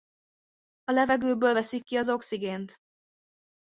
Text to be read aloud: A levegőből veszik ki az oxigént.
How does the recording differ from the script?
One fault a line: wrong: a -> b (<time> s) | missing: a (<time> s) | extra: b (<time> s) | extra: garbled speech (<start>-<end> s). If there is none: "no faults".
no faults